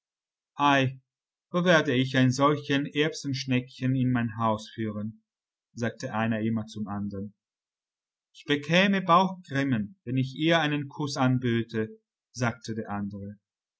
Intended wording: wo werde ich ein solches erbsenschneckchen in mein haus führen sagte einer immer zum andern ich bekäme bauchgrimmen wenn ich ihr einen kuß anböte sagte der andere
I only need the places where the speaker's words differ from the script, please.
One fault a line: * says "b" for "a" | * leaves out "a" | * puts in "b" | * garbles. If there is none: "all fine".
all fine